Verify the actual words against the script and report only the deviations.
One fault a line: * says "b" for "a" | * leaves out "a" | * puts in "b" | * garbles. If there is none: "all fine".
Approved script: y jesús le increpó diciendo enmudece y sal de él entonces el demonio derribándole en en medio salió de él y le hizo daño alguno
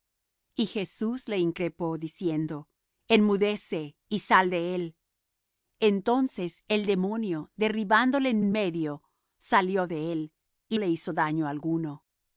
all fine